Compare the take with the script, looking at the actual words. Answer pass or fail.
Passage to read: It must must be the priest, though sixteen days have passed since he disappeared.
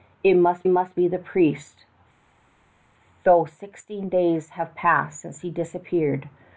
pass